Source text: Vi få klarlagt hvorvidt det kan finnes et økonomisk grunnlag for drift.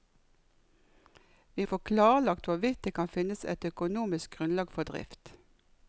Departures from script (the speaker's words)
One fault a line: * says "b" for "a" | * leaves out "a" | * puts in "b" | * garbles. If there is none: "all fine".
all fine